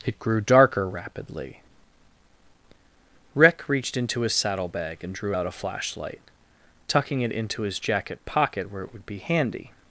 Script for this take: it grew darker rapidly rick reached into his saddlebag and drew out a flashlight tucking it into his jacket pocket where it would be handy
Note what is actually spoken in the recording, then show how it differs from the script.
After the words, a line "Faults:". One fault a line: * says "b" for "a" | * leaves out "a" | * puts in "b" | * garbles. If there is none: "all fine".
it grew darker rapidly rick reached into his saddlebag and drew out a flashlight tucking it into his jacket pocket where it would be handy
Faults:
all fine